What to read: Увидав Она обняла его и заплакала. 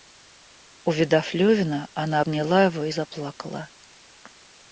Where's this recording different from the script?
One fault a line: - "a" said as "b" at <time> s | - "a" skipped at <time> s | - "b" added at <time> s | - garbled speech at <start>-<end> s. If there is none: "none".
- "Левина" added at 1.4 s